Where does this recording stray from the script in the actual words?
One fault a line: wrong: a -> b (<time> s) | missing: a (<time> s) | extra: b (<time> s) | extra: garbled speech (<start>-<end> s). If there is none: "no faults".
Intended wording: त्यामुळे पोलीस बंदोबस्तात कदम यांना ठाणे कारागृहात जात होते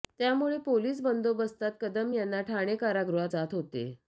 no faults